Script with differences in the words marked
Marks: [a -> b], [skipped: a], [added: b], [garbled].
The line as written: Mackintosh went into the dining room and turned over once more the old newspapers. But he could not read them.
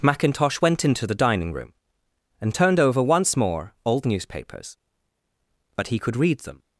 Mackintosh went into the dining room and turned over once more [skipped: the] old newspapers. But he could [skipped: not] read them.